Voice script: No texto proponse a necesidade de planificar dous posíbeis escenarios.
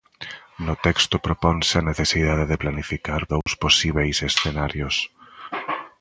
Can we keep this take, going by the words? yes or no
yes